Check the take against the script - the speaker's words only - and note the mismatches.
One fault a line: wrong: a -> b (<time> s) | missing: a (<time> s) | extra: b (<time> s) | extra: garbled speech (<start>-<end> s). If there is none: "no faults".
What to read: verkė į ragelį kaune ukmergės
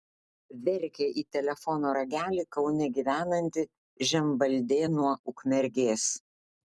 extra: telefono (1.4 s)
extra: gyvenanti žemvaldė nuo (3.0 s)